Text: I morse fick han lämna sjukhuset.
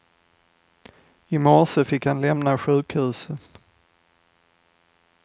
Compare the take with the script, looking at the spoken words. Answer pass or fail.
pass